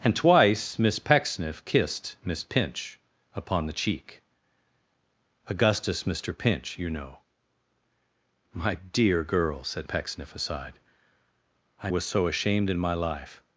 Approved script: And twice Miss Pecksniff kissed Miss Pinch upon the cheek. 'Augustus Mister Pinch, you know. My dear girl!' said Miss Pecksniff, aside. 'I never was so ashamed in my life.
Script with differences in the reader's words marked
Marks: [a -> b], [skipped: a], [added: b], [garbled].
And twice Miss Pecksniff kissed Miss Pinch upon the cheek. 'Augustus Mister Pinch, you know. My dear girl!' said [skipped: Miss] Pecksniff, aside. 'I [skipped: never] was so ashamed in my life.